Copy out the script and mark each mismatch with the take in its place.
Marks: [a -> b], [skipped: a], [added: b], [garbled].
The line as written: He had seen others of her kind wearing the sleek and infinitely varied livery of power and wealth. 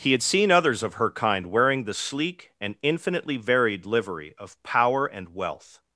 He had seen others of her kind wearing the sleek and infinitely varied livery of power and wealth.